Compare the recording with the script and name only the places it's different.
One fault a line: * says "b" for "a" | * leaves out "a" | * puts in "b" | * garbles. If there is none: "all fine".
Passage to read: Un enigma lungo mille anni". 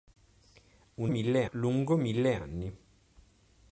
* says "mille" for "enigma"